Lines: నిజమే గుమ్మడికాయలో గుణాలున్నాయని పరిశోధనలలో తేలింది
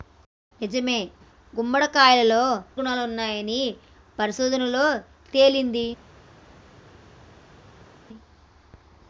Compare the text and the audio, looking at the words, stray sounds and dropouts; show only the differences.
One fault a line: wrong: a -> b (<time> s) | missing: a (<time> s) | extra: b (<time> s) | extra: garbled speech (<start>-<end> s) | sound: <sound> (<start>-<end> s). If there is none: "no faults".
no faults